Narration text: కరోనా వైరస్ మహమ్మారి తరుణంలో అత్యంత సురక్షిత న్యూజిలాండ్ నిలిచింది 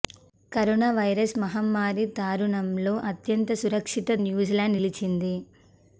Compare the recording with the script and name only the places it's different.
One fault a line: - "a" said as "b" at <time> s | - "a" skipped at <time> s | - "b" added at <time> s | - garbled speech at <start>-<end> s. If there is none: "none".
none